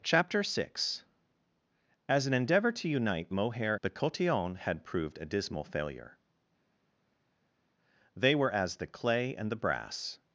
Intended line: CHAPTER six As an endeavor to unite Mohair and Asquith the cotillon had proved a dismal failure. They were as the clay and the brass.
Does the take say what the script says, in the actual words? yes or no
no